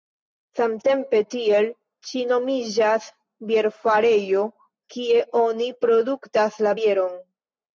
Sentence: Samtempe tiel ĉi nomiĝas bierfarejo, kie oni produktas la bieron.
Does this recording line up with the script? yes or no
yes